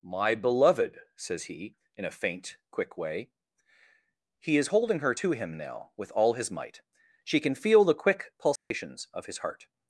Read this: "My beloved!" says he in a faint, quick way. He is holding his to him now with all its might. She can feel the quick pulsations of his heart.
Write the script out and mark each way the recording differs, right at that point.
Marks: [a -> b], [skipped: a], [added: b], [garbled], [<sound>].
"My beloved!" says he in a faint, quick way. He is holding [his -> her] to him now with all [its -> his] might. She can feel the quick pulsations [dropout] of his heart.